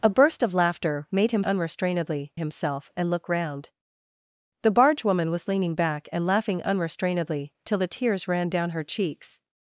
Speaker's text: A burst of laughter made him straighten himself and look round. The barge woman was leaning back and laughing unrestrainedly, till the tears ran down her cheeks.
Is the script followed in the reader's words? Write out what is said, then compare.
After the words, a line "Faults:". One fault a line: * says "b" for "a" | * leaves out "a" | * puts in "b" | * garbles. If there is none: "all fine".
A burst of laughter made him unrestrainedly himself and look round. The barge woman was leaning back and laughing unrestrainedly, till the tears ran down her cheeks.
Faults:
* says "unrestrainedly" for "straighten"